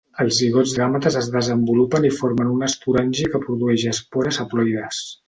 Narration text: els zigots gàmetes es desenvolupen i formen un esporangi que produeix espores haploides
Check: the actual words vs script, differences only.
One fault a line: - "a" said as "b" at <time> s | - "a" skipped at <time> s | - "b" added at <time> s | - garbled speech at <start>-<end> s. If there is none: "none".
none